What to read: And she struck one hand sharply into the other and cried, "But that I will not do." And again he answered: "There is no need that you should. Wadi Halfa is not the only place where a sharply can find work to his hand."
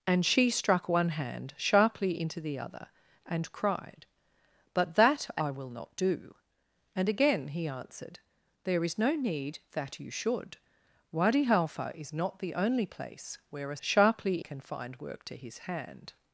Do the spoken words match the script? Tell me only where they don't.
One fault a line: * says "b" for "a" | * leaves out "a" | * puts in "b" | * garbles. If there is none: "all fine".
all fine